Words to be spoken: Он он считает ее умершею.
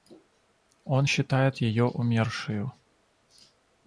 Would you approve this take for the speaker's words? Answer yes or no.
no